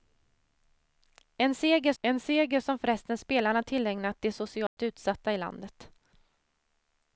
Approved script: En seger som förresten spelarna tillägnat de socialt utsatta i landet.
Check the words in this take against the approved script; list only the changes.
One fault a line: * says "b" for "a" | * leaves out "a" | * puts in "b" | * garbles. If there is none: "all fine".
* puts in "en seger"